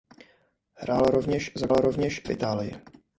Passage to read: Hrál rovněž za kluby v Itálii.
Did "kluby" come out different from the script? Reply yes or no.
yes